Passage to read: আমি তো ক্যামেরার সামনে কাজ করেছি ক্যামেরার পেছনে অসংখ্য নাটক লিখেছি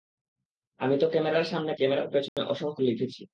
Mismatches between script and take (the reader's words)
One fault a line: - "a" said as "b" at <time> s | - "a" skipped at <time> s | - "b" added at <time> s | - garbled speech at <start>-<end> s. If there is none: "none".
- "কাজ করেছি" skipped at 1.7 s
- "নাটক" skipped at 2.8 s